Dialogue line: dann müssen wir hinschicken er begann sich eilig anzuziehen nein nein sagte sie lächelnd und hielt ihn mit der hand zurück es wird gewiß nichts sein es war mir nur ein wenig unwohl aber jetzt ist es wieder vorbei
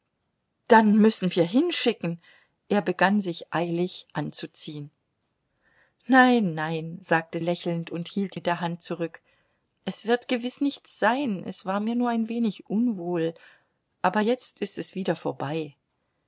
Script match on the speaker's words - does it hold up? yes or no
no